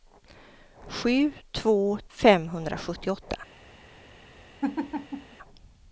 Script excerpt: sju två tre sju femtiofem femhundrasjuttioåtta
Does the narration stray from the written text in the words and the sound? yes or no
yes